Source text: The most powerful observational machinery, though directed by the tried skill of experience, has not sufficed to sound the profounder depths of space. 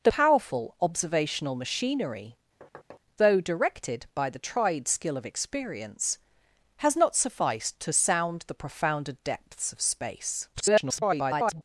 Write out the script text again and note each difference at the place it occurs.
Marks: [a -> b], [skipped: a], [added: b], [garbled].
The [skipped: most] powerful observational machinery, though directed by the tried skill of experience, has not sufficed to sound the profounder depths of space. [garbled]